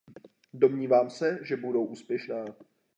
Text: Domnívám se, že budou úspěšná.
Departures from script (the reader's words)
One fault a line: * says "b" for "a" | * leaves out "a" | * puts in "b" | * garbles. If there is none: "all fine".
all fine